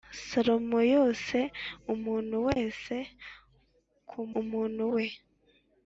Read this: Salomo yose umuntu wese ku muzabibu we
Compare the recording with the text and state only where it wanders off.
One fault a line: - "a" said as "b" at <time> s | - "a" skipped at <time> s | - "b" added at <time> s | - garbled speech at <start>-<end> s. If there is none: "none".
- "muzabibu" said as "umuntu" at 4.4 s